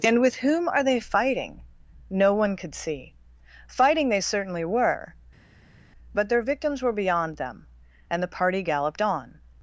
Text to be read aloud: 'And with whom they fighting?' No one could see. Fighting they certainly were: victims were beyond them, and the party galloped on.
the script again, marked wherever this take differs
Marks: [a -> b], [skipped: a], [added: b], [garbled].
'And with whom [added: are] they fighting?' No one could see. Fighting they certainly were: [added: but their] victims were beyond them, and the party galloped on.